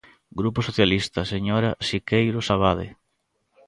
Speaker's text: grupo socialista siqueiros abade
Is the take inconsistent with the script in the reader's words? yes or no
yes